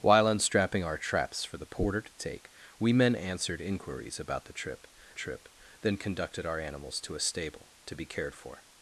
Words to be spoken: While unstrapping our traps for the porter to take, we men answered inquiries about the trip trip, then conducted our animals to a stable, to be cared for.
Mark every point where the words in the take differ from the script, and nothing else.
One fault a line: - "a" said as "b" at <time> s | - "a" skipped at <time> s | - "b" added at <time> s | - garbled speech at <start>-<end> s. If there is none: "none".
none